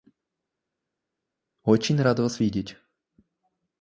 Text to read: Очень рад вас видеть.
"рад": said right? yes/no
yes